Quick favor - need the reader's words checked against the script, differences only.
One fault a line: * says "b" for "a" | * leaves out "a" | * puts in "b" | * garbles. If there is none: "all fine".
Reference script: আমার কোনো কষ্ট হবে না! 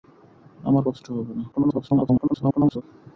* leaves out "কোনো"
* garbles